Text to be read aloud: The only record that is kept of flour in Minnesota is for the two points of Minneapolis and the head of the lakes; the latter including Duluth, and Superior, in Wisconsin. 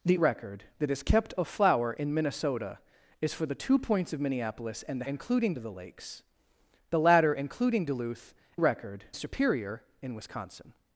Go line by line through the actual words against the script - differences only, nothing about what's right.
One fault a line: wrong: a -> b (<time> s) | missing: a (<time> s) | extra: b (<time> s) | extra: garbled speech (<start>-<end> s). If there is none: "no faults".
missing: only (0.2 s)
wrong: head -> including (5.0 s)
wrong: and -> record (8.5 s)